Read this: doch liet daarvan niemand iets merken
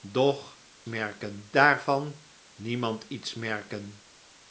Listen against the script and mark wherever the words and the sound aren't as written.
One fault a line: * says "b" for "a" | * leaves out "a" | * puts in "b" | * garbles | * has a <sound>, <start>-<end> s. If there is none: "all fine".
* says "merken" for "liet"